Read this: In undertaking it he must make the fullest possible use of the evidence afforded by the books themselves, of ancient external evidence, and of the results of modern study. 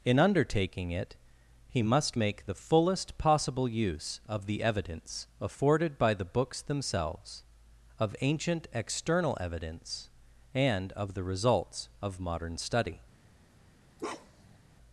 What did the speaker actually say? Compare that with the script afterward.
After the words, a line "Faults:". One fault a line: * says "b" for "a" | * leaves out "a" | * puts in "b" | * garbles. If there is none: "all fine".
In undertaking it he must make the fullest possible use of the evidence afforded by the books themselves, of ancient external evidence, and of the results of modern study.
Faults:
all fine